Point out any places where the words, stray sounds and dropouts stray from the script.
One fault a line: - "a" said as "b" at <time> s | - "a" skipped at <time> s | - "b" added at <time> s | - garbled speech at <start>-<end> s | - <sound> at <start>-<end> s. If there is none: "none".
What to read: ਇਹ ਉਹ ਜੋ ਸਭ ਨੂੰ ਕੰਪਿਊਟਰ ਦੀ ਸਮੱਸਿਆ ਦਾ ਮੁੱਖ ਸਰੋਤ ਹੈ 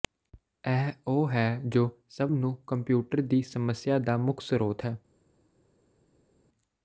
- "ਹੈ" added at 1.3 s